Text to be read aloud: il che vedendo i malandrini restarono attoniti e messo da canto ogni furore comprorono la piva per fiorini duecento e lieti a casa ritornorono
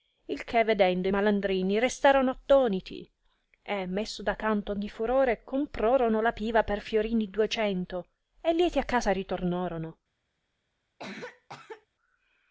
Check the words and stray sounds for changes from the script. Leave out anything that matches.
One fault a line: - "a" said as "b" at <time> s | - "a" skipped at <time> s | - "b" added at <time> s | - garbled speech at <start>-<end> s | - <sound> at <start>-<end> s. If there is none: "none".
- cough at 11.0-11.9 s